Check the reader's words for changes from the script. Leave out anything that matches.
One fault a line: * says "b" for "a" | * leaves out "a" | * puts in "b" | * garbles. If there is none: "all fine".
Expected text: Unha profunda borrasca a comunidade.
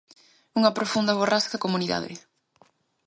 all fine